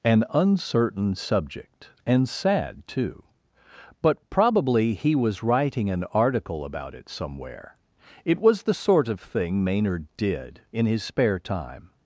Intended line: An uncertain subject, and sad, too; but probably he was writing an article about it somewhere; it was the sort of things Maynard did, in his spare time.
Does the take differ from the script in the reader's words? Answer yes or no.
yes